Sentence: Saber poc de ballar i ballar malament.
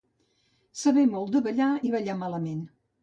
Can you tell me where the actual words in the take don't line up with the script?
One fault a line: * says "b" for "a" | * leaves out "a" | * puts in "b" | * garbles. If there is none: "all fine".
* says "molt" for "poc"